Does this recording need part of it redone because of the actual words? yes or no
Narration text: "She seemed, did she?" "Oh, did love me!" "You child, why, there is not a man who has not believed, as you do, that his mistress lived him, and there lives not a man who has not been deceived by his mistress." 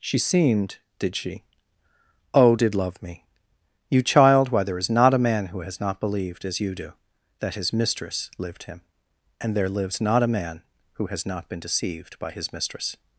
no